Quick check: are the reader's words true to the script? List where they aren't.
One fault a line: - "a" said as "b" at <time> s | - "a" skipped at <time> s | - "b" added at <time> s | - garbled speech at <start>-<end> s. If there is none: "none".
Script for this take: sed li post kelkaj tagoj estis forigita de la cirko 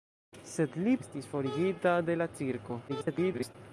- "post kelkaj tagoj" skipped at 0.9 s
- garbled speech at 2.9-3.5 s